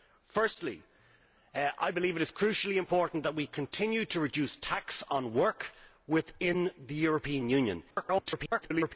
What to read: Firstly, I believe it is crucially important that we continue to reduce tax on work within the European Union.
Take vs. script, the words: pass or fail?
fail